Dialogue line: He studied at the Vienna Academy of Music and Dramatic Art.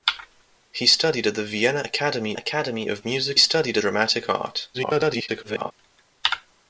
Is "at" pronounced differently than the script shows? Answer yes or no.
no